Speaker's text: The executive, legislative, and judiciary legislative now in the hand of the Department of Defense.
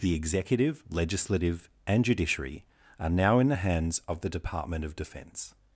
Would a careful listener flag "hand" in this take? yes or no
yes